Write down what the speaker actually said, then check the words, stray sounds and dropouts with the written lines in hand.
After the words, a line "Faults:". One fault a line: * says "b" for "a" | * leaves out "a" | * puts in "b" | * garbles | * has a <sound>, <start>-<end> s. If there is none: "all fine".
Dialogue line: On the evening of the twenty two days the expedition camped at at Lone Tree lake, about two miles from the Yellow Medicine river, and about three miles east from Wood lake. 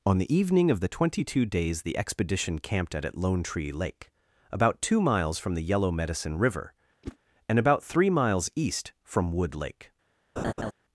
On the evening of the twenty two days the expedition camped at at Lone Tree lake, about two miles from the Yellow Medicine river, and about three miles east from Wood lake.
Faults:
* has a whoosh, 7.0-7.2 s
* has a laugh, 10.4-10.7 s